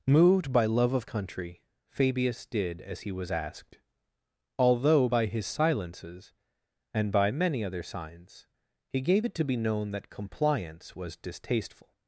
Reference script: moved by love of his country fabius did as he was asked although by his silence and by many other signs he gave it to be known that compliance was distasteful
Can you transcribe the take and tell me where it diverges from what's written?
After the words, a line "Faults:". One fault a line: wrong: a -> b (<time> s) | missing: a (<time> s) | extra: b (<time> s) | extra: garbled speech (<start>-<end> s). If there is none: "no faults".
moved by love of country fabius did as he was asked although by his silences and by many other signs he gave it to be known that compliance was distasteful
Faults:
missing: his (1.1 s)
wrong: silence -> silences (5.5 s)